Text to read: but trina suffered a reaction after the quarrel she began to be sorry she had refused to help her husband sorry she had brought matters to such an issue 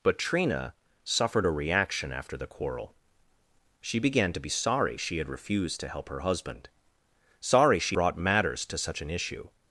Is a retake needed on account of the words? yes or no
yes